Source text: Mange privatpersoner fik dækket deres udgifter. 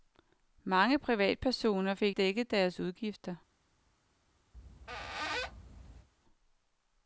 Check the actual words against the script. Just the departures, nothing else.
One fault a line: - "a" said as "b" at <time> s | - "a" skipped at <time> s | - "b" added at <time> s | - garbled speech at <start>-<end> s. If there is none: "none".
none